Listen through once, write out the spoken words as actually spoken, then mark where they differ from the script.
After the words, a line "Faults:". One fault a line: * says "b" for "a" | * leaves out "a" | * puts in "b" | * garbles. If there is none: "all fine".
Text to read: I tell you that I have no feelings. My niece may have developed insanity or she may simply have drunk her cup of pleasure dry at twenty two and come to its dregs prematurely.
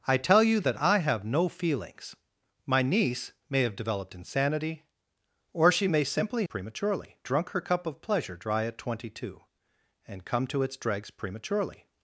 I tell you that I have no feelings. My niece may have developed insanity or she may simply prematurely drunk her cup of pleasure dry at twenty two and come to its dregs prematurely.
Faults:
* says "prematurely" for "have"